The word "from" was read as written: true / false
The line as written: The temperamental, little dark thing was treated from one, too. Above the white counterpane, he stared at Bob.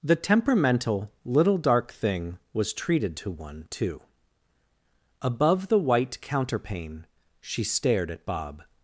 false